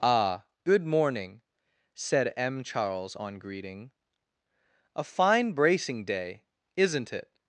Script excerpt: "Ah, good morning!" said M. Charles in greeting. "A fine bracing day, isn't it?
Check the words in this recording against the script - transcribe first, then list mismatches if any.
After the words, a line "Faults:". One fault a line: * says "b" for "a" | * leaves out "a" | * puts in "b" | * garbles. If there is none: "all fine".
"Ah, good morning!" said M. Charles on greeting. "A fine bracing day, isn't it?
Faults:
* says "on" for "in"